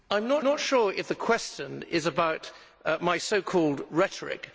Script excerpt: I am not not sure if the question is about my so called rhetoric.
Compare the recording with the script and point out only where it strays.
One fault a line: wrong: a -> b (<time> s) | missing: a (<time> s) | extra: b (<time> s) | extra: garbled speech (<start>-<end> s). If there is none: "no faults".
no faults